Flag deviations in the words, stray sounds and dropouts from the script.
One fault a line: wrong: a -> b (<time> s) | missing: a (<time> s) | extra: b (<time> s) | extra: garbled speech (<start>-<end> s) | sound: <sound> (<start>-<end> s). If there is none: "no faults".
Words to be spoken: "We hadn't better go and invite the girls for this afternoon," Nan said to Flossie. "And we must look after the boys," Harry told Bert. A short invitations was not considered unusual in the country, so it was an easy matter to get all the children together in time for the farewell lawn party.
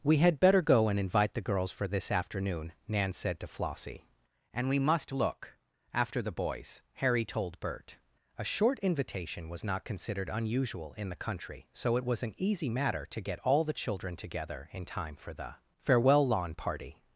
wrong: hadn't -> had (0.2 s)
wrong: invitations -> invitation (8.8 s)